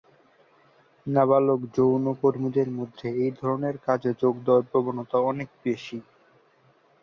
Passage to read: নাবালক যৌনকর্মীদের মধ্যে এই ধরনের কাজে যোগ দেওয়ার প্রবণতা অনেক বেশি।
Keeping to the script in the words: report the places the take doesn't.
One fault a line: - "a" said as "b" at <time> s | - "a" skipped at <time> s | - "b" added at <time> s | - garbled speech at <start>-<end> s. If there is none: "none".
none